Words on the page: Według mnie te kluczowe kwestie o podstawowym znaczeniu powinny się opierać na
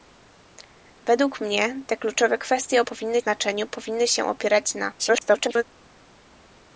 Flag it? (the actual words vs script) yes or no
yes